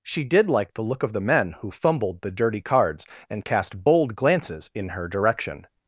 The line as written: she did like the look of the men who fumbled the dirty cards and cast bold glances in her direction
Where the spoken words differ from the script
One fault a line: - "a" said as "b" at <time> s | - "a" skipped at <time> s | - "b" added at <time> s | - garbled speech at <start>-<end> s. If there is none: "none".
none